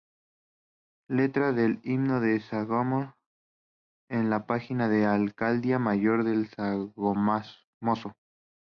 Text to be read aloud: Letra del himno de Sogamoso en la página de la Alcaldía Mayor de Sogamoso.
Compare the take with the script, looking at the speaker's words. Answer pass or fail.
pass